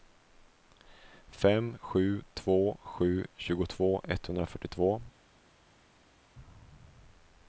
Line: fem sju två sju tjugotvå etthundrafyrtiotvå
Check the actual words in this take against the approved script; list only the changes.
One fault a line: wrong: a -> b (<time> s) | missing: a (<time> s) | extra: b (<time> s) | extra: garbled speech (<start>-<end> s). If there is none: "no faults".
no faults